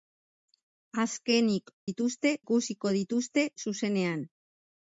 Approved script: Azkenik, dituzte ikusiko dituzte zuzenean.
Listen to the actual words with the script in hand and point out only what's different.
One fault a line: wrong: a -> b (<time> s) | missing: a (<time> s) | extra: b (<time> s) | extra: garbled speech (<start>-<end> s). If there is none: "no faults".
no faults